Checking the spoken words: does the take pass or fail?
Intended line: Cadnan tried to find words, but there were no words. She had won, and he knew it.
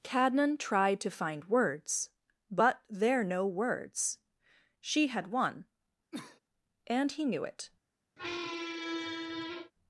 fail